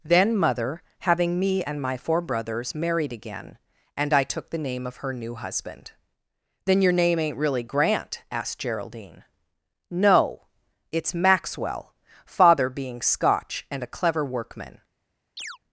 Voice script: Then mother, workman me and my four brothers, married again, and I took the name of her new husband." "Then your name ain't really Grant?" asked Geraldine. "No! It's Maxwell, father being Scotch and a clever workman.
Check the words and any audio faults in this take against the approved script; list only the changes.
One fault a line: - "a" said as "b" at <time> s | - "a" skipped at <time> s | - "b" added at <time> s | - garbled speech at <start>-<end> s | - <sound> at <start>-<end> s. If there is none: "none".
- "workman" said as "having" at 1.0 s
- chirp at 15.4-15.6 s